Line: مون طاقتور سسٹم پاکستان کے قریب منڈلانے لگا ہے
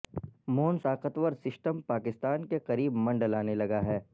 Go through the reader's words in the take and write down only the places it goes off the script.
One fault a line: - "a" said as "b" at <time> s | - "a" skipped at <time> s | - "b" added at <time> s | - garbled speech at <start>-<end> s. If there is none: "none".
none